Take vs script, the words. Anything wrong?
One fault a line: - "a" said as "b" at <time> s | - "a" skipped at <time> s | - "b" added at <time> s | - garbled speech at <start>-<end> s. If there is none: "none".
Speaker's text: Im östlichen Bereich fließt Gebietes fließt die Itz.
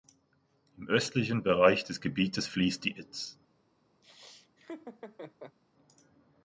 - "fließt" said as "des" at 1.8 s